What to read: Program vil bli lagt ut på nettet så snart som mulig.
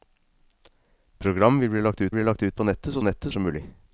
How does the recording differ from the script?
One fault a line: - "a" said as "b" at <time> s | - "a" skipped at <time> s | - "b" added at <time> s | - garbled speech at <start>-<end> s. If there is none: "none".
- "bli lagt ut" added at 2.1 s
- "snart" said as "nettet" at 3.0 s